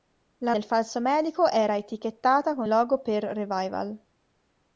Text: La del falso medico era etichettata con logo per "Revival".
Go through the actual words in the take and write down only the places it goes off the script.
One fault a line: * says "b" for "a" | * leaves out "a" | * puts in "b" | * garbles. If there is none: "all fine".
all fine